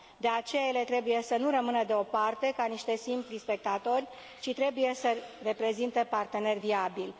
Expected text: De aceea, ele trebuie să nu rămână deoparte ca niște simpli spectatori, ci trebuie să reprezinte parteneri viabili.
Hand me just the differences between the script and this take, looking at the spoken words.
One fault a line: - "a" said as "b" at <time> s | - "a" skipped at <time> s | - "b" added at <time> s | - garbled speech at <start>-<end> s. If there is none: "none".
none